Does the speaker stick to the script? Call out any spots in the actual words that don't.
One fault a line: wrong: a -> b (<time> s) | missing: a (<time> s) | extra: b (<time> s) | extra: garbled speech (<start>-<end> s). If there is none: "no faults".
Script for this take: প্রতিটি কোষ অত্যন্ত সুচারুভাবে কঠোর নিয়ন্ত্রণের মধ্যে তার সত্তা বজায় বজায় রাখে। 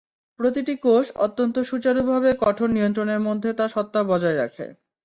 missing: বজায় (4.4 s)